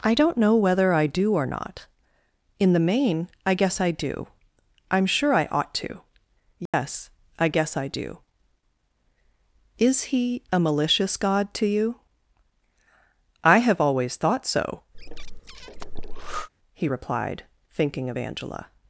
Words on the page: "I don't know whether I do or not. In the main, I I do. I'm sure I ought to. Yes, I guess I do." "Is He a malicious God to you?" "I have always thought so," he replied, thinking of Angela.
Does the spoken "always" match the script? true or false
true